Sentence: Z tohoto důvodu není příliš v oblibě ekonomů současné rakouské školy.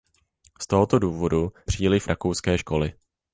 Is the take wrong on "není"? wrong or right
wrong